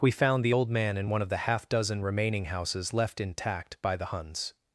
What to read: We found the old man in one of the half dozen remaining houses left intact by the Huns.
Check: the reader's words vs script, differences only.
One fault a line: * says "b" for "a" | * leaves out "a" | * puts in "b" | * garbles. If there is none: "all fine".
all fine